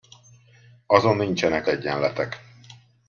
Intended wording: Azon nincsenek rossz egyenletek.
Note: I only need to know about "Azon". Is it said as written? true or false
true